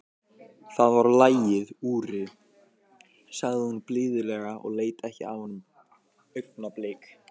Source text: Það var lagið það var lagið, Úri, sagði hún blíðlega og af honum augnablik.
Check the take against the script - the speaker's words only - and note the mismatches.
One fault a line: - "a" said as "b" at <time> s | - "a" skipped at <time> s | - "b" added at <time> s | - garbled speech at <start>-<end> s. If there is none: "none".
- "það var lagið" skipped at 1.7 s
- "leit ekki" added at 4.8 s